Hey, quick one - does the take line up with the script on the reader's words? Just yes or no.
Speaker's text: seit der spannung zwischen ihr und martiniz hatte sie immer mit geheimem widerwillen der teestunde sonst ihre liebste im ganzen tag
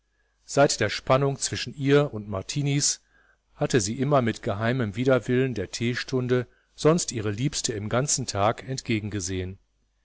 yes